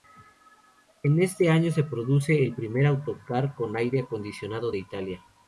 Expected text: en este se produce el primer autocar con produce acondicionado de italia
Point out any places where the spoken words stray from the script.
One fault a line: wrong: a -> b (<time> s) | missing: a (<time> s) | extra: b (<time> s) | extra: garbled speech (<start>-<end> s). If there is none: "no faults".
extra: año (1.5 s)
wrong: produce -> aire (3.8 s)